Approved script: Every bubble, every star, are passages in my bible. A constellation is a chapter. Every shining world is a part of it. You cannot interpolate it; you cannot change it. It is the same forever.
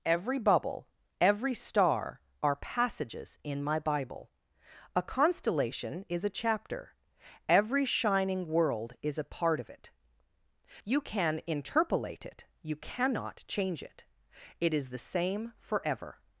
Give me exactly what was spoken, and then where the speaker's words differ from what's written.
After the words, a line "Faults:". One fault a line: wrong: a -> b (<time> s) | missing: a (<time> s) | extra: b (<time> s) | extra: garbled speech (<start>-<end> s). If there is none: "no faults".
Every bubble, every star, are passages in my bible. A constellation is a chapter. Every shining world is a part of it. You can interpolate it; you cannot change it. It is the same forever.
Faults:
wrong: cannot -> can (11.0 s)